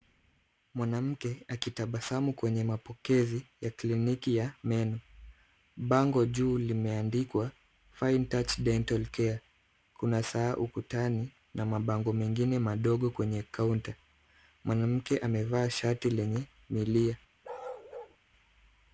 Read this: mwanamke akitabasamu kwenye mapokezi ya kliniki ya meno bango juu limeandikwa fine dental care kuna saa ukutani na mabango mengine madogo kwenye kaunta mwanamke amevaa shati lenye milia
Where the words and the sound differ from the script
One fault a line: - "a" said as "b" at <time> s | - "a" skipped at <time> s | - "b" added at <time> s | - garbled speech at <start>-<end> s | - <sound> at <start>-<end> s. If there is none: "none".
- "touch" added at 8.2 s
- bark at 17.4-18.2 s